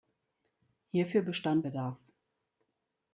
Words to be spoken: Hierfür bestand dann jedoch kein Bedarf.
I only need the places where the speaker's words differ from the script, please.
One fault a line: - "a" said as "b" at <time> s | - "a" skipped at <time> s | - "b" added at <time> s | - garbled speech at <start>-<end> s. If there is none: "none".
- "dann jedoch kein" skipped at 1.7 s